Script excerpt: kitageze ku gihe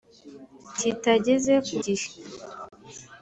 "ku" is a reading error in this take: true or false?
false